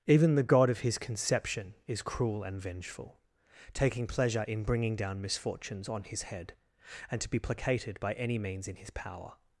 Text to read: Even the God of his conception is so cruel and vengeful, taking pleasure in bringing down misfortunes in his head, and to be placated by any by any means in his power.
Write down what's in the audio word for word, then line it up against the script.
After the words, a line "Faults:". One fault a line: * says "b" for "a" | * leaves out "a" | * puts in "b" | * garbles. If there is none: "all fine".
Even the God of his conception is cruel and vengeful, taking pleasure in bringing down misfortunes on his head, and to be placated by any means in his power.
Faults:
* leaves out "so"
* says "on" for "in"
* leaves out "by any"